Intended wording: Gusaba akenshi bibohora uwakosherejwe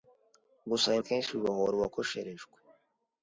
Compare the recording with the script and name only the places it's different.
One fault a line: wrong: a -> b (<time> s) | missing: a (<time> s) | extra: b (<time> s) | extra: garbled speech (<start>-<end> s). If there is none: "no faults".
no faults